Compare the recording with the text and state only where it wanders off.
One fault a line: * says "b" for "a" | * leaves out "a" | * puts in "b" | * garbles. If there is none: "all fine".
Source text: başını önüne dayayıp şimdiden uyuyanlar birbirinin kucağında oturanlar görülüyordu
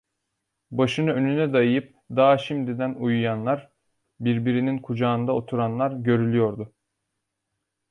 * puts in "daha"